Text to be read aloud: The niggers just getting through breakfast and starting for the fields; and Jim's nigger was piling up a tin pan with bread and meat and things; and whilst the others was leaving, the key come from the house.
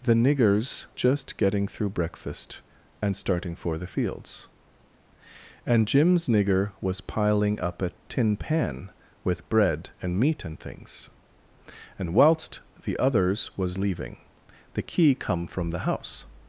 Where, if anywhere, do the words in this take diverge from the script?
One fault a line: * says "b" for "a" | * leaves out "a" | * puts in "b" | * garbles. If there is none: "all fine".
all fine